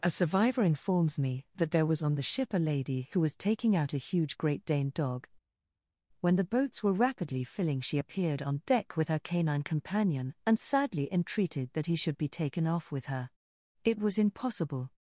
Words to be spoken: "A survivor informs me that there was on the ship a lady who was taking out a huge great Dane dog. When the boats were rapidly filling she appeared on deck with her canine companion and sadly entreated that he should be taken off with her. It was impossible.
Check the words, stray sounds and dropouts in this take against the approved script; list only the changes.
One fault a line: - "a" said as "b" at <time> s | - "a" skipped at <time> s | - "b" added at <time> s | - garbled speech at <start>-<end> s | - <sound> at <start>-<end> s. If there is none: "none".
none